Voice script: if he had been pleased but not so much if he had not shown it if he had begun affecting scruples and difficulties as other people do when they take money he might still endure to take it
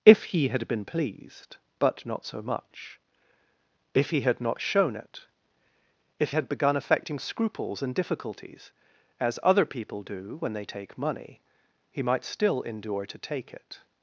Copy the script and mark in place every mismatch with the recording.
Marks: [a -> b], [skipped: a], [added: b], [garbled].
if he had been pleased but not so much if he had not shown it if [skipped: he] had begun affecting scruples and difficulties as other people do when they take money he might still endure to take it